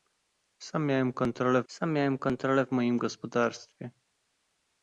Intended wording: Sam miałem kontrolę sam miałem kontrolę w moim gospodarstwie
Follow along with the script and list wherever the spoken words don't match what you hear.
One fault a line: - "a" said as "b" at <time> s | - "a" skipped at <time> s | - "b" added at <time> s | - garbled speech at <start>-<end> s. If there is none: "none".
none